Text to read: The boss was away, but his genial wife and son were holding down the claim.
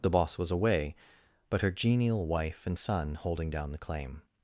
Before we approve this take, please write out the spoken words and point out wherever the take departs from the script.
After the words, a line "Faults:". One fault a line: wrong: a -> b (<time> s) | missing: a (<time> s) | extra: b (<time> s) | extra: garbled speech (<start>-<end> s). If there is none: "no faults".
The boss was away, but her genial wife and son holding down the claim.
Faults:
wrong: his -> her (1.6 s)
missing: were (3.1 s)